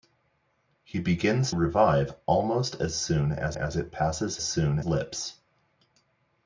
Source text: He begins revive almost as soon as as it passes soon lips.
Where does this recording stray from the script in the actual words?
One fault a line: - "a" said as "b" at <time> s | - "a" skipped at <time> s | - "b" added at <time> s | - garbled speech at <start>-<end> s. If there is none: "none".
none